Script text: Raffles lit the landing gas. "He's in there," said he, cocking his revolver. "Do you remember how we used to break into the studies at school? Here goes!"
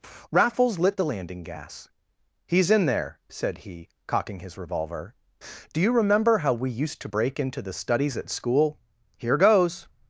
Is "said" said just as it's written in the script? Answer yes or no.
yes